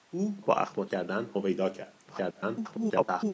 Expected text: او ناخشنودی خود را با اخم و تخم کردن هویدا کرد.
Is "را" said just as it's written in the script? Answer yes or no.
no